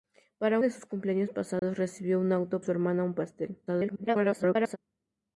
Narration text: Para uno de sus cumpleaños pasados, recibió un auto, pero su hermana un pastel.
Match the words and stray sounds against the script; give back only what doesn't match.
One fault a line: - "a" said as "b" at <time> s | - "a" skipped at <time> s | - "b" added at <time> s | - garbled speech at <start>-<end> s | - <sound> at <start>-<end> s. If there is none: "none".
- "uno" skipped at 0.6 s
- dropout at 1.6-1.6 s
- "pero" skipped at 2.6 s
- garbled speech at 3.7-4.8 s